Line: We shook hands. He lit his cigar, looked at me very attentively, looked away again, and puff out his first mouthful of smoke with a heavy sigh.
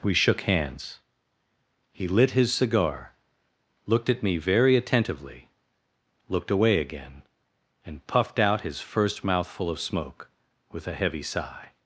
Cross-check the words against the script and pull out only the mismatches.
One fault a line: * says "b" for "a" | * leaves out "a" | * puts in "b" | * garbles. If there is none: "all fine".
* says "puffed" for "puff"